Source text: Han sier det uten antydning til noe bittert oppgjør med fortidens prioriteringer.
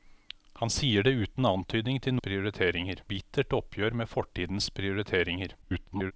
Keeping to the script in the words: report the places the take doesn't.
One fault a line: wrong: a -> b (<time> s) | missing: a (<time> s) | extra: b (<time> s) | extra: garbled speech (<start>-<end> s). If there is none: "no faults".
wrong: noe -> prioriteringer (2.2 s)
extra: garbled speech (5.6-6.1 s)